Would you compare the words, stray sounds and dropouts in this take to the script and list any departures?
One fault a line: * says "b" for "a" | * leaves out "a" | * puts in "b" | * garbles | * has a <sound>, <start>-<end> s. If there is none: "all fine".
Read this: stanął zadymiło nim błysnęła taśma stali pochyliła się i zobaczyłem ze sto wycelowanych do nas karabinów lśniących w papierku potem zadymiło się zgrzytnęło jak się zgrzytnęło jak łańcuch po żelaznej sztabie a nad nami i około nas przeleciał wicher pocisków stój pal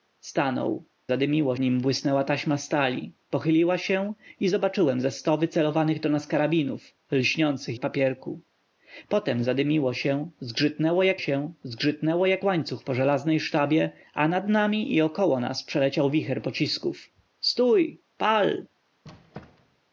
* has a squeak, 19.0-19.8 s